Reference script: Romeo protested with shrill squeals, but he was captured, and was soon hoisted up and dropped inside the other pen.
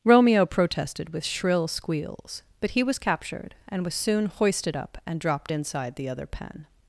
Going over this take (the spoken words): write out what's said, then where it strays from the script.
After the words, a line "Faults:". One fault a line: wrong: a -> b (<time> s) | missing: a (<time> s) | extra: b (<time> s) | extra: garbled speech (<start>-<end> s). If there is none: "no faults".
Romeo protested with shrill squeals, but he was captured, and was soon hoisted up and dropped inside the other pen.
Faults:
no faults